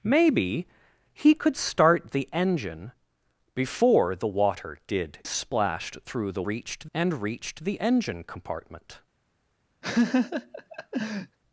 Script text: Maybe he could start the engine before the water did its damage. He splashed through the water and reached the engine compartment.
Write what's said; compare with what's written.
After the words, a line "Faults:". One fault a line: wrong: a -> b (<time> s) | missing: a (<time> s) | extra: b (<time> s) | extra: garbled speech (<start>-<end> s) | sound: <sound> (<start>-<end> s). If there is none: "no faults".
Maybe he could start the engine before the water did splashed through the reached and reached the engine compartment.
Faults:
missing: its damage He (5.2 s)
wrong: water -> reached (6.4 s)
sound: laugh (9.8-11.4 s)